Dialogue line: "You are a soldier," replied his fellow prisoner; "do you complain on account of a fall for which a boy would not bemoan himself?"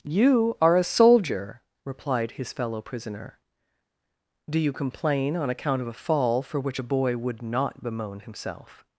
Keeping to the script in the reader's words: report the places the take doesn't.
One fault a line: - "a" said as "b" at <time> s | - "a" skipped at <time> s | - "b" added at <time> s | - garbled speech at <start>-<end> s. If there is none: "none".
none